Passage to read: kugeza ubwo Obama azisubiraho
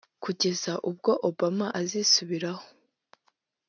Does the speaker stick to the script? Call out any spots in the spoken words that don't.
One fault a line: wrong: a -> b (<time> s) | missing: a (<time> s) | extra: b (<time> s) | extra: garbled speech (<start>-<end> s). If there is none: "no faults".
no faults